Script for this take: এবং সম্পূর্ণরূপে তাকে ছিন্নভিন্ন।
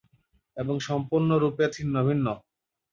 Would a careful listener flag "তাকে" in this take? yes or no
yes